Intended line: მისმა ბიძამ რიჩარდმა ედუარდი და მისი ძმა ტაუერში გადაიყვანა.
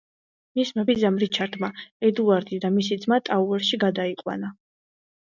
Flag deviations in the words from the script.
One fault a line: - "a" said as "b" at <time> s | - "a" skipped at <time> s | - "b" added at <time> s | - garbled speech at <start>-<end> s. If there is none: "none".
none